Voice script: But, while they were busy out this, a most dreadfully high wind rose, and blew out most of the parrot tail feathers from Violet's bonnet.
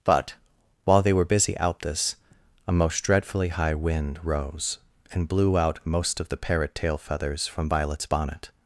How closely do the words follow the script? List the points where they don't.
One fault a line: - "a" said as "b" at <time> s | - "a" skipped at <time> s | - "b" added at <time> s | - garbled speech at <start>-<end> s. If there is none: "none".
none